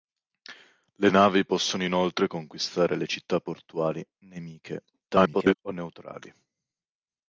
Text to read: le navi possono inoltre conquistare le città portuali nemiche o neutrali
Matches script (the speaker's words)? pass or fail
fail